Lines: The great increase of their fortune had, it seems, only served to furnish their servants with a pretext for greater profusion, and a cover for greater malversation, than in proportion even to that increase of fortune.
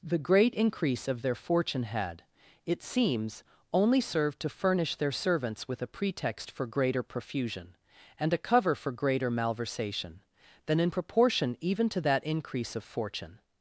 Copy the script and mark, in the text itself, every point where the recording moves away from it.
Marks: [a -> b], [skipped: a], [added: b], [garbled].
The great increase of their fortune had, it seems, only served to furnish their servants with a pretext for greater profusion, and a cover for greater malversation, than in proportion even to that increase of fortune.